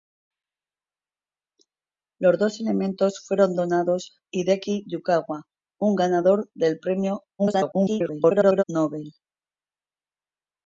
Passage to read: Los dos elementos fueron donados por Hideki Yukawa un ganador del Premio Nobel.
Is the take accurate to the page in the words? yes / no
no